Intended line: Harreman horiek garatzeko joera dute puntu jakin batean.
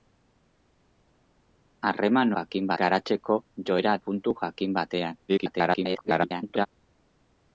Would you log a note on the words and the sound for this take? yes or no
yes